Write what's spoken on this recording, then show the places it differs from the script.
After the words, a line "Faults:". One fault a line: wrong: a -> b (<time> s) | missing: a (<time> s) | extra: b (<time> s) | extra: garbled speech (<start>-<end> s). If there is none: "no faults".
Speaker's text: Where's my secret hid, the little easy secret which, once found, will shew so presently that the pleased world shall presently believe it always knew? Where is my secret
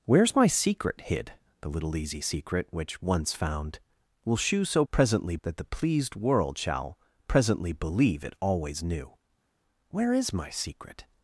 Where's my secret hid, the little easy secret which, once found, will shew so presently that the pleased world shall presently believe it always knew? Where is my secret
Faults:
no faults